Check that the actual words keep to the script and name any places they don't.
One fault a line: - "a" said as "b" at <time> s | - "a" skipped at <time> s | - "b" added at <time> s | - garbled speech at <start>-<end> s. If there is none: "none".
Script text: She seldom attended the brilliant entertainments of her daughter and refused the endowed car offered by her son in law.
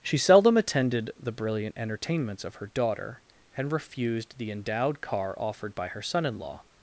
none